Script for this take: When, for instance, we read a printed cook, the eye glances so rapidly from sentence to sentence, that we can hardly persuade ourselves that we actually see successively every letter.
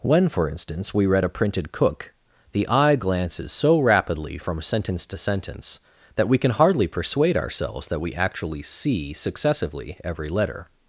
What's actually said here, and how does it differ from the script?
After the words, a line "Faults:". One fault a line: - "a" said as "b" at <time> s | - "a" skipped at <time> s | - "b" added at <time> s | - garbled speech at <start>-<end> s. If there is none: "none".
When, for instance, we read a printed cook, the eye glances so rapidly from sentence to sentence, that we can hardly persuade ourselves that we actually see successively every letter.
Faults:
none